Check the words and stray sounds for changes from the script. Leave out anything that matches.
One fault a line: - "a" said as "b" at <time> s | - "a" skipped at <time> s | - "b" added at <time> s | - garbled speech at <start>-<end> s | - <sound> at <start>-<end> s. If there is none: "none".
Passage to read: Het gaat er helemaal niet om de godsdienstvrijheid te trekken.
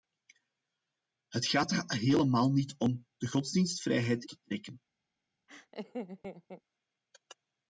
- laugh at 5.5-6.6 s